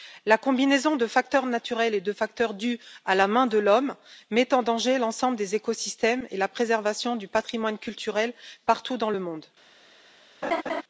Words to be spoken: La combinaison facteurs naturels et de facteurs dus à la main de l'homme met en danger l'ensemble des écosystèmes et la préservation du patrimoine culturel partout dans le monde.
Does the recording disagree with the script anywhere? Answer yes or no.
yes